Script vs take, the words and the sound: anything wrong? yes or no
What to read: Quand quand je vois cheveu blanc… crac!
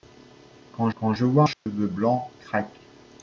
yes